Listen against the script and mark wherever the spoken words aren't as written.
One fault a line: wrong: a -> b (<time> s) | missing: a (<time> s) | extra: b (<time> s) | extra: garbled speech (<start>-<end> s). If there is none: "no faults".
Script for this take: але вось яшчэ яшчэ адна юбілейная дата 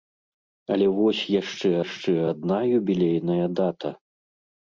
no faults